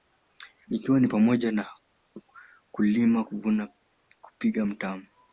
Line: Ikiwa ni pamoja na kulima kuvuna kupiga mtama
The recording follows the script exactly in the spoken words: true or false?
true